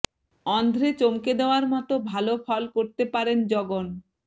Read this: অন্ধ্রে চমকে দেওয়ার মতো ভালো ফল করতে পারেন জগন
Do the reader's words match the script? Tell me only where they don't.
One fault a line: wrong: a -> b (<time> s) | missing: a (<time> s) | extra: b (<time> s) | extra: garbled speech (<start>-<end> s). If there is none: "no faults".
no faults